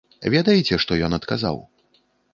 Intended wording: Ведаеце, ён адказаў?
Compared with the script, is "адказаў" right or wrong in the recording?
right